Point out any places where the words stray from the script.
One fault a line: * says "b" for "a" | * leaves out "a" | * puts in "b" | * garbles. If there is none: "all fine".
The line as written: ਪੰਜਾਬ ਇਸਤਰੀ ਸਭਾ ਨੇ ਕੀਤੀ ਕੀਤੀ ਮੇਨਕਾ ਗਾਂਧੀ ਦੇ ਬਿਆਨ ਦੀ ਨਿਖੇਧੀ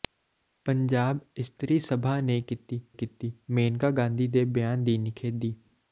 all fine